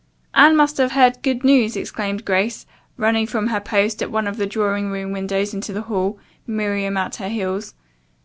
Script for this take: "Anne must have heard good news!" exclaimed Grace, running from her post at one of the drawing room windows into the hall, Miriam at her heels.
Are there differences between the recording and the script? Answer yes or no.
no